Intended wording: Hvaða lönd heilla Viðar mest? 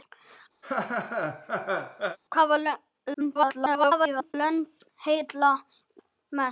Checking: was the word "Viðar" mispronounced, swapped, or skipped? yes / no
yes